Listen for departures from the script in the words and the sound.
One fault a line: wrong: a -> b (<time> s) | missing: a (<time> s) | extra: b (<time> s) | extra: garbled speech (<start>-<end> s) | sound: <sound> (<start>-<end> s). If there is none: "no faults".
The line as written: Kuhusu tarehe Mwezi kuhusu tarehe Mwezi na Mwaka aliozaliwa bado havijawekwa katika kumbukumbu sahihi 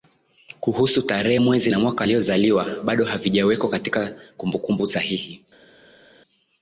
missing: kuhusu tarehe Mwezi (1.7 s)